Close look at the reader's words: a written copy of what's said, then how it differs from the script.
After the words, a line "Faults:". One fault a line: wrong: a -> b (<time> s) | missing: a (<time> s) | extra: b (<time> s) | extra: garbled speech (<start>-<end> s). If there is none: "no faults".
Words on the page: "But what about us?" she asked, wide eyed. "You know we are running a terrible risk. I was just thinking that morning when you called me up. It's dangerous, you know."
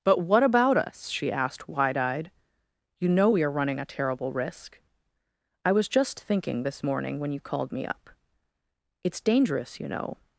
"But what about us?" she asked, wide eyed. "You know we are running a terrible risk. I was just thinking this morning when you called me up. It's dangerous, you know."
Faults:
wrong: that -> this (6.6 s)